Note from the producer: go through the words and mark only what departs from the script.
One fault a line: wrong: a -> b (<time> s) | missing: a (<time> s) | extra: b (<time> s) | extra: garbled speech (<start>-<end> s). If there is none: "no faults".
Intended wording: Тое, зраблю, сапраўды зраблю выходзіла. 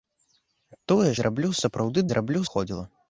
no faults